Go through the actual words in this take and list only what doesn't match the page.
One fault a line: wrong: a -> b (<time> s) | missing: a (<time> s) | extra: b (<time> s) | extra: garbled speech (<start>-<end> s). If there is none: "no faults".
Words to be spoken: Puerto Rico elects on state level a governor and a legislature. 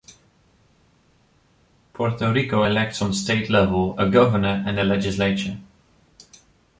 no faults